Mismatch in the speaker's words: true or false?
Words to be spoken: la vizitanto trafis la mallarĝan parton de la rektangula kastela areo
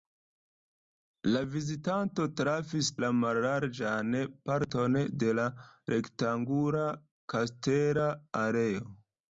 false